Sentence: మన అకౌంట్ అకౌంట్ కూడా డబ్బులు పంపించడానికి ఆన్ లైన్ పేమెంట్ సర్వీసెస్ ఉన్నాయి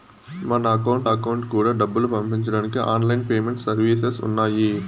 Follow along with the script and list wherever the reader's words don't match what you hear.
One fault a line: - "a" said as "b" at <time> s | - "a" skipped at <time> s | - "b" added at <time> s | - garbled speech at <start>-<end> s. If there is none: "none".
none